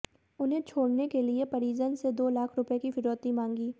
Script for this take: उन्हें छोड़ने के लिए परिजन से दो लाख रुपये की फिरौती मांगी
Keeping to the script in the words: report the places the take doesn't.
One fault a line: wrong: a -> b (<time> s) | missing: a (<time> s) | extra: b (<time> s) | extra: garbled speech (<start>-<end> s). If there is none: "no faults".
no faults